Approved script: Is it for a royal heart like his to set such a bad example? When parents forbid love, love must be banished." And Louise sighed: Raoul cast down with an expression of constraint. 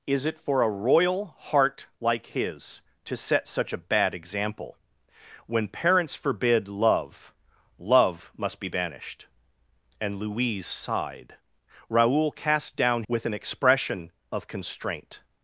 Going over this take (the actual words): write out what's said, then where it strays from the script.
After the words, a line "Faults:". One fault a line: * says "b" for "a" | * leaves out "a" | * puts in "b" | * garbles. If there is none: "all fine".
Is it for a royal heart like his to set such a bad example? When parents forbid love, love must be banished." And Louise sighed: Raoul cast down with an expression of constraint.
Faults:
all fine